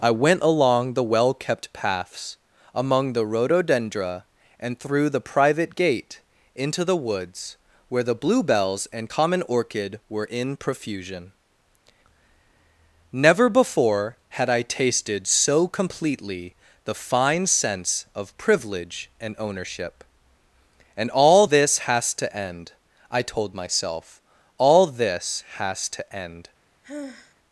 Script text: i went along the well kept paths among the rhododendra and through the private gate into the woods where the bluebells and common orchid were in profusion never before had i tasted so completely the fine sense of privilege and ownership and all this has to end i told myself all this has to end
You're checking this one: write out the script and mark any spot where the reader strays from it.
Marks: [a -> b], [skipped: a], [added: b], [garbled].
i went along the well kept paths among the rhododendra and through the private gate into the woods where the bluebells and common orchid were in profusion never before had i tasted so completely the fine sense of privilege and ownership and all this has to end i told myself all this has to end